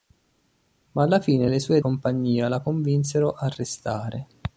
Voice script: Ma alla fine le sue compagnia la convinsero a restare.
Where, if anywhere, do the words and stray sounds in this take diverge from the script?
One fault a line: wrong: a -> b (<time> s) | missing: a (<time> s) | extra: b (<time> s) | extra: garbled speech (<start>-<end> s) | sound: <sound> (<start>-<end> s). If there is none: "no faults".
no faults